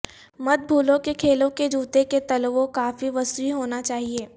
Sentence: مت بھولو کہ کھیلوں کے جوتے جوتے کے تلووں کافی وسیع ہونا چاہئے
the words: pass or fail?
fail